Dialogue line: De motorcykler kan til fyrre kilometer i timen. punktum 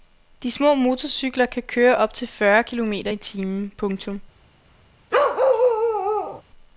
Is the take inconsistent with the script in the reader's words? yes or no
yes